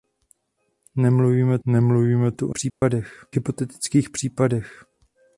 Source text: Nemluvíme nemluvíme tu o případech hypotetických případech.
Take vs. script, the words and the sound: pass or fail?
fail